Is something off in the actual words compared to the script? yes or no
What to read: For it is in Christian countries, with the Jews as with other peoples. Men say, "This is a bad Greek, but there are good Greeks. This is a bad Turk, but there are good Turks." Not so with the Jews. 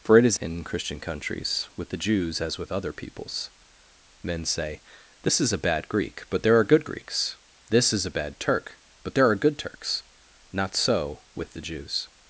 no